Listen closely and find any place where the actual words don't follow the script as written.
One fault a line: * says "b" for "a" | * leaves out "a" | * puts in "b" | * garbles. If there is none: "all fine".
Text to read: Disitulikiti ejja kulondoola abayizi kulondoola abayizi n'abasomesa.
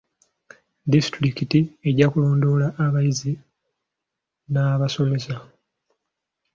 * leaves out "kulondoola abayizi"